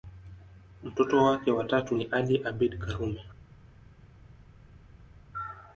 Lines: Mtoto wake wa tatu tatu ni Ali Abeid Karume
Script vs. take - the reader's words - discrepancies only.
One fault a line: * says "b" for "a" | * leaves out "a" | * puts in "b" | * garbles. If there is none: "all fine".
* leaves out "tatu"